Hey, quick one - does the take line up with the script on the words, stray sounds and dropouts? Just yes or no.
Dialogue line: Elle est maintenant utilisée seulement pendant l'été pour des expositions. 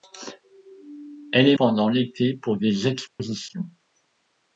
no